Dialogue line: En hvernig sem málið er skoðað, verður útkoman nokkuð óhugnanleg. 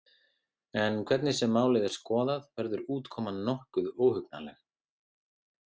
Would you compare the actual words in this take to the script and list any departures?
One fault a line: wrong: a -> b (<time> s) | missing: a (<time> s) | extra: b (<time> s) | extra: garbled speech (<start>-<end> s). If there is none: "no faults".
no faults